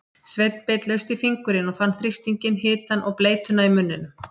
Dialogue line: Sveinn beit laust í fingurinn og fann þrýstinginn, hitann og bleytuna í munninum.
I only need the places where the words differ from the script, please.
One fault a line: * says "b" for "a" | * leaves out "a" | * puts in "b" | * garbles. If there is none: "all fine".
all fine